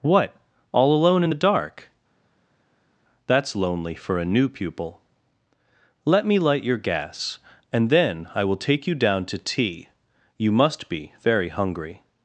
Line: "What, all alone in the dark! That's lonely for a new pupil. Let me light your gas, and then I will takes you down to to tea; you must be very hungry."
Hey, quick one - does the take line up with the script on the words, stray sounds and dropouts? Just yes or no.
no